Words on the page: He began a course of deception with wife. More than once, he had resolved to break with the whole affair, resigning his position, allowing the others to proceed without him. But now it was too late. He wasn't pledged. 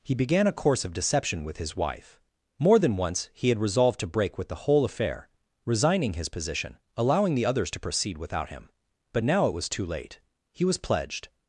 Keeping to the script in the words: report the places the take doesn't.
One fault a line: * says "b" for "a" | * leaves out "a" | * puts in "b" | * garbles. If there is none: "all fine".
* puts in "his"
* says "was" for "wasn't"